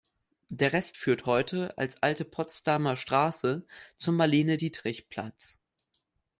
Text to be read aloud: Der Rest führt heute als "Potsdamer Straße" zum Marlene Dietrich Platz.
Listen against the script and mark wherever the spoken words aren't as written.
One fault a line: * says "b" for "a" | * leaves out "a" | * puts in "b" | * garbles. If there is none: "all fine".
* puts in "Alte"